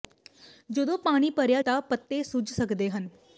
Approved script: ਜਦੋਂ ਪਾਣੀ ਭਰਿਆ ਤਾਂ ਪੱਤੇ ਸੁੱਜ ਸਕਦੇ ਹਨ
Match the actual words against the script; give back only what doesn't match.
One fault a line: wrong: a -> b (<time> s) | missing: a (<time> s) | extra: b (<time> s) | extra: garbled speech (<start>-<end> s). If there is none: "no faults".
no faults